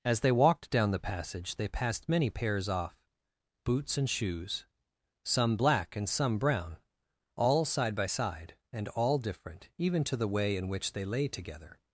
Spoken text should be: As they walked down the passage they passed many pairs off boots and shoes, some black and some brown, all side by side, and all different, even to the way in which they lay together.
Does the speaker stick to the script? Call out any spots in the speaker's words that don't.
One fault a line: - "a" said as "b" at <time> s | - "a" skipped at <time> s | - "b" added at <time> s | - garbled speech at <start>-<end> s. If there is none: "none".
none